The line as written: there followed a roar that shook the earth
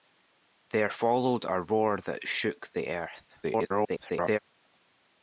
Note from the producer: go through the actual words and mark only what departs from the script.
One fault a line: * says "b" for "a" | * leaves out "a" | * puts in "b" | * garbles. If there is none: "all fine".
* garbles